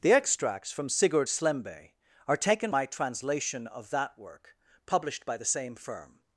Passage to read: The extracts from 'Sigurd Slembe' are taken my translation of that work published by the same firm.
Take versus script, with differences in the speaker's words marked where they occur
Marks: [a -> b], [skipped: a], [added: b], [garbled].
The extracts from 'Sigurd Slembe' are taken my translation of that work published by the same firm.